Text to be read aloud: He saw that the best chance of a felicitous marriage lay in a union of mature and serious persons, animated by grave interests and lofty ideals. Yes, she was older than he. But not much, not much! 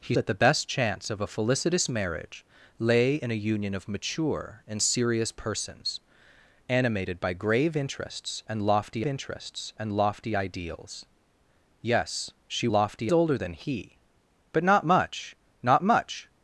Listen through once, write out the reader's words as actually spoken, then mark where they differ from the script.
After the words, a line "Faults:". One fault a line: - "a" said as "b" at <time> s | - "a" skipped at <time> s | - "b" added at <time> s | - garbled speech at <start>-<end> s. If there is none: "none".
He that the best chance of a felicitous marriage lay in a union of mature and serious persons, animated by grave interests and lofty interests and lofty ideals. Yes, she lofty older than he. But not much, not much!
Faults:
- "saw" skipped at 0.1 s
- "interests and lofty" added at 9.0 s
- "was" said as "lofty" at 12.7 s